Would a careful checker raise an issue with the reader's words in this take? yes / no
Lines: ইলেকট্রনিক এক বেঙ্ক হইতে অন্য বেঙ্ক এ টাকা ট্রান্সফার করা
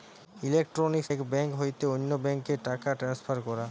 no